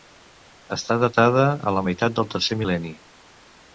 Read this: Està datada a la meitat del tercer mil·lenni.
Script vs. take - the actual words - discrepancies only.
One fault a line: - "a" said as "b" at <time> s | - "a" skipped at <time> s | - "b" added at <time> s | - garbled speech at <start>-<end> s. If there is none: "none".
none